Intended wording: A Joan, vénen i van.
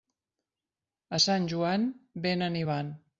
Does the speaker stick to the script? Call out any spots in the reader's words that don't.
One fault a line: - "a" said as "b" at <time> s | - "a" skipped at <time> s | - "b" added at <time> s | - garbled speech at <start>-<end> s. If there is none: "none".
- "Sant" added at 1.2 s